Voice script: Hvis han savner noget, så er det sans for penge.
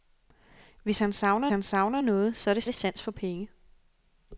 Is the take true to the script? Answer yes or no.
no